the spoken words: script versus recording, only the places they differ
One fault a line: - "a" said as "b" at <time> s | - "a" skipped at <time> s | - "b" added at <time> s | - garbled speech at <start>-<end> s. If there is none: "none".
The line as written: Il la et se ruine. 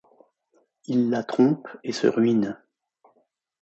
- "trompe" added at 1.2 s